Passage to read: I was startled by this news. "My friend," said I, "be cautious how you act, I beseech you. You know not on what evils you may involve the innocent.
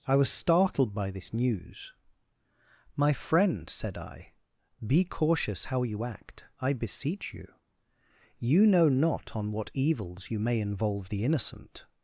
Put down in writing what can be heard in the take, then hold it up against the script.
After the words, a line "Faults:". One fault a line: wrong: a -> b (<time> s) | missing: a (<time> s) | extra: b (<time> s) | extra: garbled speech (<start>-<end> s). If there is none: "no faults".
I was startled by this news. "My friend," said I, "be cautious how you act, I beseech you. You know not on what evils you may involve the innocent.
Faults:
no faults